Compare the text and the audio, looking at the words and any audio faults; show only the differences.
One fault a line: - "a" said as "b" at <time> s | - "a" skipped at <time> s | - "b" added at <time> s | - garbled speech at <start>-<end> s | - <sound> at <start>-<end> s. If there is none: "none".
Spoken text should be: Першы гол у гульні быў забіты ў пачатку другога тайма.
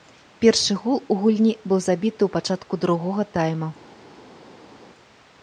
none